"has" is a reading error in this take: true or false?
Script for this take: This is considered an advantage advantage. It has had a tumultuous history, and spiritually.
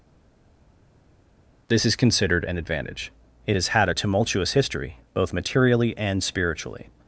false